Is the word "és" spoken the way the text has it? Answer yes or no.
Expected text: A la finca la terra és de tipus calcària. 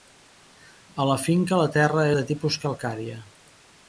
no